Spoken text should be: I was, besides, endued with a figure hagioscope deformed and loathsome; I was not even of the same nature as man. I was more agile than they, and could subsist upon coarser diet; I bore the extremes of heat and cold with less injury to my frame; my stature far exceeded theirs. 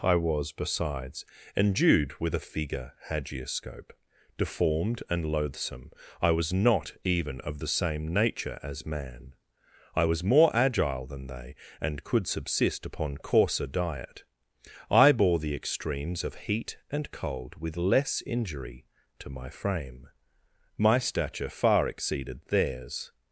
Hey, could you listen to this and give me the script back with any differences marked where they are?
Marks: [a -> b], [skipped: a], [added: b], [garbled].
I was, besides, endued with a figure hagioscope deformed and loathsome; I was not even of the same nature as man. I was more agile than they, and could subsist upon coarser diet; I bore the extremes of heat and cold with less injury to my frame; my stature far exceeded theirs.